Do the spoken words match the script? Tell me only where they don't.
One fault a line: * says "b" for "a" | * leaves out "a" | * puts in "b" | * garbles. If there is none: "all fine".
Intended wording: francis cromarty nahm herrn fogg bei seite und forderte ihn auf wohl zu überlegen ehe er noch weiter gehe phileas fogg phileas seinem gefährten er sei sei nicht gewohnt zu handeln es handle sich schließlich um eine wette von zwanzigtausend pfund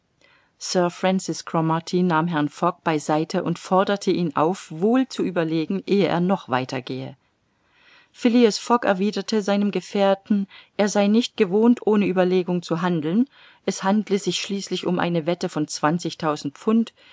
* says "erwiderte" for "phileas"
* leaves out "sei"
* puts in "ohne ueberlegung"